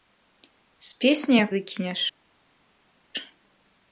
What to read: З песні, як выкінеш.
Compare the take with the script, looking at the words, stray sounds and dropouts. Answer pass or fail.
pass